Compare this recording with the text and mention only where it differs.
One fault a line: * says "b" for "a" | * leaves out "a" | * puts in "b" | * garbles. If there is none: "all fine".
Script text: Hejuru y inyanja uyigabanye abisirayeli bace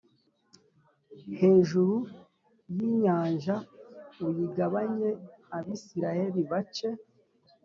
all fine